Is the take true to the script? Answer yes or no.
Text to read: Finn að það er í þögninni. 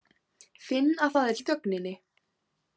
yes